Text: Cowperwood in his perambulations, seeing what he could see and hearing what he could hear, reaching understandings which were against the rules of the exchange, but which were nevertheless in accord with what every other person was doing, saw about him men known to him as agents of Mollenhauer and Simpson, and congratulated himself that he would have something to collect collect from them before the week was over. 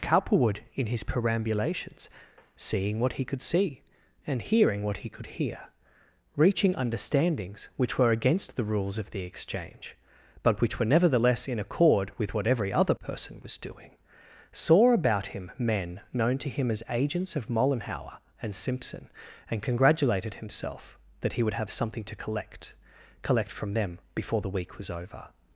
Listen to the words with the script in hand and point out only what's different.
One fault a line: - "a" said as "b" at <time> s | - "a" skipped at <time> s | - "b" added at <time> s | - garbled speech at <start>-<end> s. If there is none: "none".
none